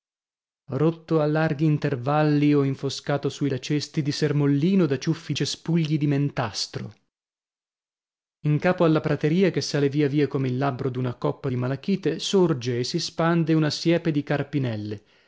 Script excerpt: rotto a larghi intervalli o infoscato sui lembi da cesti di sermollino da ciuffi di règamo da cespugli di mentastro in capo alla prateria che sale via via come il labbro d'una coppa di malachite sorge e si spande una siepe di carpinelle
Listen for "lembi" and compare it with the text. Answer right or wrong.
wrong